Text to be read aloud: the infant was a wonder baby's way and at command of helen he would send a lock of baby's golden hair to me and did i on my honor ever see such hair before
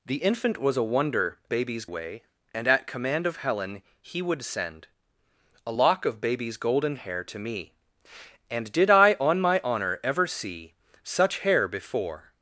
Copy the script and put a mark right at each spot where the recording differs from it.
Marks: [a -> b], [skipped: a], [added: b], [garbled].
the infant was a wonder baby's way and at command of helen he would send a lock of baby's golden hair to me and did i on my honor ever see such hair before